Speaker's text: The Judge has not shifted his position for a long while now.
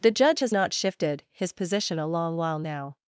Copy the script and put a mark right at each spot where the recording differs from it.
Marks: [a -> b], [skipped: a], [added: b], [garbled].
The Judge has not shifted his position [skipped: for] a long while now.